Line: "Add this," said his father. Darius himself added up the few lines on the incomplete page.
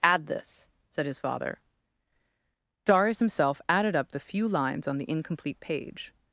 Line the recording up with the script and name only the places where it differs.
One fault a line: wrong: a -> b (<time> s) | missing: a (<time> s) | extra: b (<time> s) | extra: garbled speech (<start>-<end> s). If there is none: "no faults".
no faults